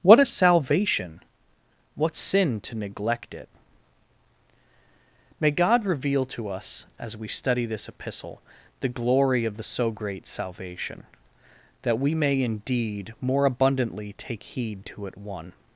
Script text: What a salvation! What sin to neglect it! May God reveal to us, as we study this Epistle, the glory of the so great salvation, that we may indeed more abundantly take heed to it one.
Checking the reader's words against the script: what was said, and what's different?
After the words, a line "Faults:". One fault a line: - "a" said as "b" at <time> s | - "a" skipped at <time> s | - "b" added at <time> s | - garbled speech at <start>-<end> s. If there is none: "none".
What a salvation! What sin to neglect it! May God reveal to us, as we study this Epistle, the glory of the so great salvation, that we may indeed more abundantly take heed to it one.
Faults:
none